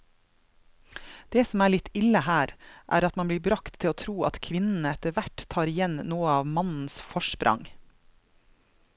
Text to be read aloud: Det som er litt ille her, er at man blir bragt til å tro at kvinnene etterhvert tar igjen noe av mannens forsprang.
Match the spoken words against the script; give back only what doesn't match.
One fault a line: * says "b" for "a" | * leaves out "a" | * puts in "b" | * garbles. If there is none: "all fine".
all fine